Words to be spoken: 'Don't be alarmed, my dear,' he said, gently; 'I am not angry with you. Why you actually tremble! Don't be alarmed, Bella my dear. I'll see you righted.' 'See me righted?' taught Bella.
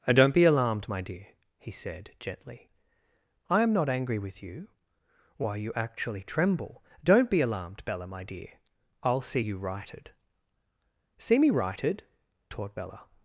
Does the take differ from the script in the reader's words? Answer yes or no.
no